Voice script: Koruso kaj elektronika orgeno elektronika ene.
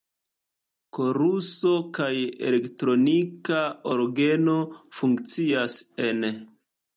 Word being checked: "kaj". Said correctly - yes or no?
yes